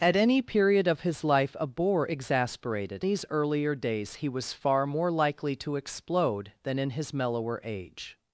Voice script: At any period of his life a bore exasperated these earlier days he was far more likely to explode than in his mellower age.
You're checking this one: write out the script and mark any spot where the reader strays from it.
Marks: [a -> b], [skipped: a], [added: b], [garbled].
At any period of his life a bore exasperated these earlier days he was far more likely to explode than in his mellower age.